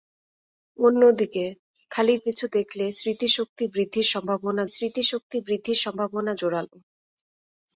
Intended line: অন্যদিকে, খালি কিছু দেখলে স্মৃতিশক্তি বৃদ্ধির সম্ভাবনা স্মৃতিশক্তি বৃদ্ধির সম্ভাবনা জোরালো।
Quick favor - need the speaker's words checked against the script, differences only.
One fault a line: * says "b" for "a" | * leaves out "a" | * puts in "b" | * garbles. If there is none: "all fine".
all fine